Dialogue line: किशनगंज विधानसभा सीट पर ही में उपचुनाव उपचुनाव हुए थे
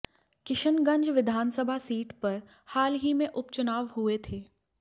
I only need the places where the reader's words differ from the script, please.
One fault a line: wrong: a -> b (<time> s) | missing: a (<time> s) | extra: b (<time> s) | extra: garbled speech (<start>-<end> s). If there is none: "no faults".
extra: हाल (2.7 s)
missing: उपचुनाव (3.9 s)